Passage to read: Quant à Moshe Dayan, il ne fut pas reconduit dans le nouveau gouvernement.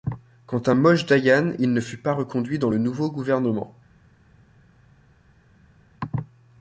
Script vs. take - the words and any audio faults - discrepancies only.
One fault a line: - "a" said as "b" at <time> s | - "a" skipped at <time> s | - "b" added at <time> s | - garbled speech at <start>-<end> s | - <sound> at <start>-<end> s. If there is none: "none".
none